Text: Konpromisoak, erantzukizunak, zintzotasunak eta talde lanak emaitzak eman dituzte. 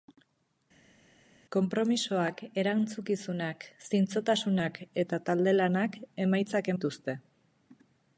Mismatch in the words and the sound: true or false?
true